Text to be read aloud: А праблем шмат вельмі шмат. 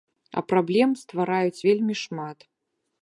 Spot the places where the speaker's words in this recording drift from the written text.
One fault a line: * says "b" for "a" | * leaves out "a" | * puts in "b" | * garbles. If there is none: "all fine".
* says "ствараюць" for "шмат"